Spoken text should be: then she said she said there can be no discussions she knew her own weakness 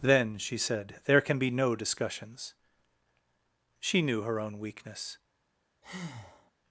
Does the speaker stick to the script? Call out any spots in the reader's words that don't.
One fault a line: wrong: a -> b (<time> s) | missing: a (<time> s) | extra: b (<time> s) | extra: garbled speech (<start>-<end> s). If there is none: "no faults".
missing: she said (1.0 s)